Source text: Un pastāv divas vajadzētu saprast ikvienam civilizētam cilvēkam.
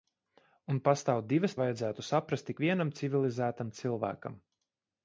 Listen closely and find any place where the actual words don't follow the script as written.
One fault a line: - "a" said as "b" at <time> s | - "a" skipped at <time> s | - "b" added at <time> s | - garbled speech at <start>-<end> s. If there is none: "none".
none